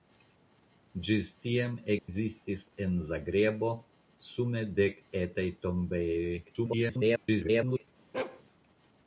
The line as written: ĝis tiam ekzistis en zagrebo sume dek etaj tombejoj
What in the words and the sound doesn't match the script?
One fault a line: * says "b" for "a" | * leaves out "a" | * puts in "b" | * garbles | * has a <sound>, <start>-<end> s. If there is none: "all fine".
* has a dropout, 2.0-2.1 s
* garbles
* has a bark, 8.1-8.4 s